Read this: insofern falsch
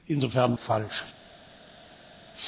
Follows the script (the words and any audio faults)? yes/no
yes